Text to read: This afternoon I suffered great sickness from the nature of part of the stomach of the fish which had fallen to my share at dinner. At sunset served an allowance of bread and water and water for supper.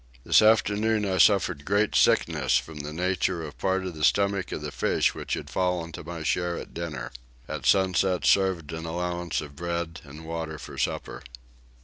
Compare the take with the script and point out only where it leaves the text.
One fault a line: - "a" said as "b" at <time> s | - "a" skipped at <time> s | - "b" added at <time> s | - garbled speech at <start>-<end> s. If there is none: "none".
- "and water" skipped at 10.6 s